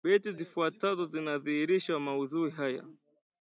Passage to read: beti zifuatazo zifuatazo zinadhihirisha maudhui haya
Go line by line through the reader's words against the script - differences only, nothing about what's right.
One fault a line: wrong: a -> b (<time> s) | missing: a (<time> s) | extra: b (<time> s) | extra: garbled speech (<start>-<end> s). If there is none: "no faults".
missing: zifuatazo (1.1 s)